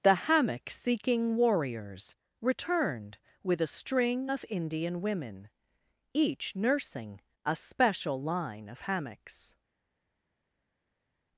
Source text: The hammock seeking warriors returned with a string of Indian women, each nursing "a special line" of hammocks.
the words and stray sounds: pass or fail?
pass